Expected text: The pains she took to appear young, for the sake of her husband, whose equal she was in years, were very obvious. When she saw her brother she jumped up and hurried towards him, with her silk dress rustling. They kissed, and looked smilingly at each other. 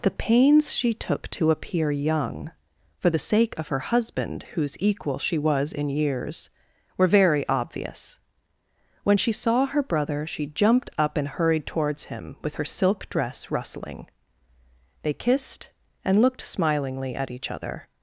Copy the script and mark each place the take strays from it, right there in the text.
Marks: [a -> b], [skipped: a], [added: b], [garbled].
The pains she took to appear young, for the sake of her husband, whose equal she was in years, were very obvious. When she saw her brother she jumped up and hurried towards him, with her silk dress rustling. They kissed, and looked smilingly at each other.